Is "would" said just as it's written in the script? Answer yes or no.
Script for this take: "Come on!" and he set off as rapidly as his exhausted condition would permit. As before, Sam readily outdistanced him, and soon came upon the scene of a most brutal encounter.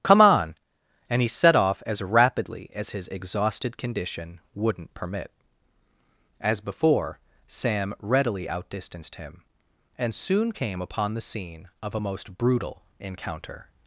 no